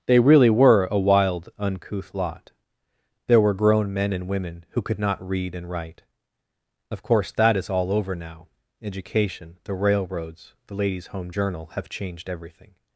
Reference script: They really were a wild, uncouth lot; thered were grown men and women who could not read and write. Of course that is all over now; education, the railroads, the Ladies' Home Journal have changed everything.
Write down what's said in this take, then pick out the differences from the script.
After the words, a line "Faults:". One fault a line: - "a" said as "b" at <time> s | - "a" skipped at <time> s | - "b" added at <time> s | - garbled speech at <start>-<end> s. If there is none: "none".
They really were a wild, uncouth lot; there were grown men and women who could not read and write. Of course that is all over now; education, the railroads, the Ladies' Home Journal have changed everything.
Faults:
- "thered" said as "there" at 3.3 s